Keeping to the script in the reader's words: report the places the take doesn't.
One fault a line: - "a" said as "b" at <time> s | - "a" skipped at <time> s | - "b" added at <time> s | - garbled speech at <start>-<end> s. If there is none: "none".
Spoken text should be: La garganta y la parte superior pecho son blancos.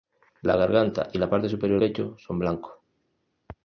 none